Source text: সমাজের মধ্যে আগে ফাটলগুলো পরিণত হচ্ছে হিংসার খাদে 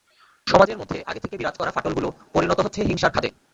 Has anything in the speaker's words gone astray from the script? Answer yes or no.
yes